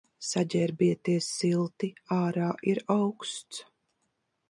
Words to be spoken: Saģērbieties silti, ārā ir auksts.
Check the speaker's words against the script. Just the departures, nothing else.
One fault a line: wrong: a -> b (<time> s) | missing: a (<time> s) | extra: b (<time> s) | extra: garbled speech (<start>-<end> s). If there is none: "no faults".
no faults